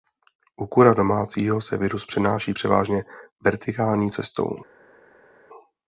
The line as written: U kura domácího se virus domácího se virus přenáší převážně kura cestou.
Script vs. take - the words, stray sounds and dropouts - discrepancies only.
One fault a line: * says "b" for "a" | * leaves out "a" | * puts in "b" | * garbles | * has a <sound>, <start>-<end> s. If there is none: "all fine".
* leaves out "domácího se virus"
* says "vertikální" for "kura"